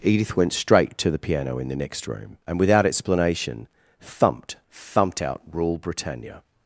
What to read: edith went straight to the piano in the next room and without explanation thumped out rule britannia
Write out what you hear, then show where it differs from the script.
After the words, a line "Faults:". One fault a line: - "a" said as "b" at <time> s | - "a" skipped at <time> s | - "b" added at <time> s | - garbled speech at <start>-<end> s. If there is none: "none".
edith went straight to the piano in the next room and without explanation thumped thumped out rule britannia
Faults:
- "thumped" added at 4.7 s